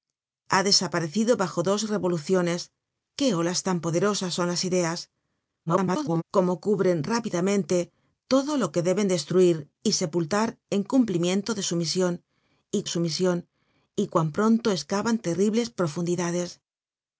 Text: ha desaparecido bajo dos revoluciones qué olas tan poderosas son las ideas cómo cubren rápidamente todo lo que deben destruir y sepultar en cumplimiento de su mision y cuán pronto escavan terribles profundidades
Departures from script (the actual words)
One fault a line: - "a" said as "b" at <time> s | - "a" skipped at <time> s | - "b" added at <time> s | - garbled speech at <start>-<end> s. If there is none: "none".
- garbled speech at 5.7-6.2 s
- "su mision y" added at 12.9 s